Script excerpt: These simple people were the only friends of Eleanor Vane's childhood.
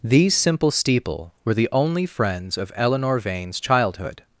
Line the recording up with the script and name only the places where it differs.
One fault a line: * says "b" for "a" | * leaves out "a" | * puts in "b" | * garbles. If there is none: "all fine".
* says "steeple" for "people"